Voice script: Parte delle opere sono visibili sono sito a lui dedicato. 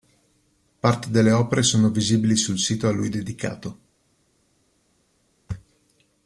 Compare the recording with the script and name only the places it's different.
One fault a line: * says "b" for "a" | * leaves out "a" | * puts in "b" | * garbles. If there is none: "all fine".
* says "sul" for "sono"